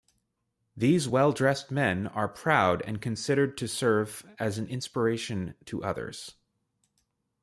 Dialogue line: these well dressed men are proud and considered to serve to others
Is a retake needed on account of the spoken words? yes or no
yes